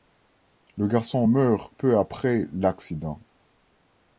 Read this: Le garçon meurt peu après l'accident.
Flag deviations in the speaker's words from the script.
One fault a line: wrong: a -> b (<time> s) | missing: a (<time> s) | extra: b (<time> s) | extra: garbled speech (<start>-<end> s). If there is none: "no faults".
no faults